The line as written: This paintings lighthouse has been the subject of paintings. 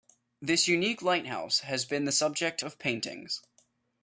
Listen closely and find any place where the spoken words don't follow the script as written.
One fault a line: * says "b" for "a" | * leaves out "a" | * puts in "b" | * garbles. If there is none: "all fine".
* says "unique" for "paintings"